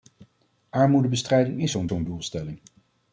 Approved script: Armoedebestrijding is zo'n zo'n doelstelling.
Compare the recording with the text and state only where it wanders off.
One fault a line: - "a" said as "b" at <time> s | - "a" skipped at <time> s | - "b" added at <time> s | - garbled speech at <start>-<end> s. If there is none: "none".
none